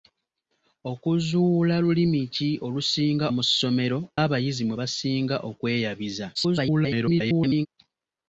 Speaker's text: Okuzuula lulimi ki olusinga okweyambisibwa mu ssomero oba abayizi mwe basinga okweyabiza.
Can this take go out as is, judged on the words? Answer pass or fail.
fail